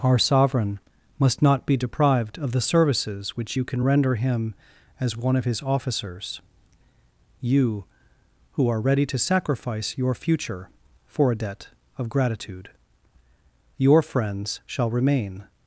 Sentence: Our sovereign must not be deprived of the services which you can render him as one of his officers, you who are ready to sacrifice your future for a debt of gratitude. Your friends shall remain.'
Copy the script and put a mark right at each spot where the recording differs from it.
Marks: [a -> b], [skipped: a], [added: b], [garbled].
Our sovereign must not be deprived of the services which you can render him as one of his officers, you who are ready to sacrifice your future for a debt of gratitude. Your friends shall remain.'